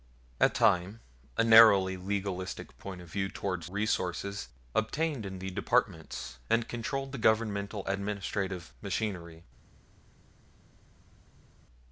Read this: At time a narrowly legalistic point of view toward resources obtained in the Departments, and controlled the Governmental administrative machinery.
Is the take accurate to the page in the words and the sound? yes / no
yes